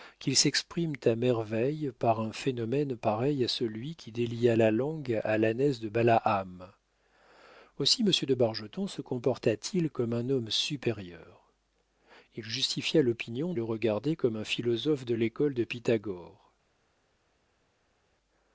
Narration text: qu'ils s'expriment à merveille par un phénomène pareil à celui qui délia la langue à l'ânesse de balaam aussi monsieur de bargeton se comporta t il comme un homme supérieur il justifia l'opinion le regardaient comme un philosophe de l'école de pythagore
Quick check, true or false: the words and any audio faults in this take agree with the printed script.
true